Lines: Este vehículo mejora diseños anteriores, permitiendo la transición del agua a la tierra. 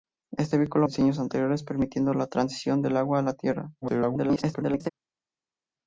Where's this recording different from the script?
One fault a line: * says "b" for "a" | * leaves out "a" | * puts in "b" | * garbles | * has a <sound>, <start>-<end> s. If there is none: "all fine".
* leaves out "mejora"
* garbles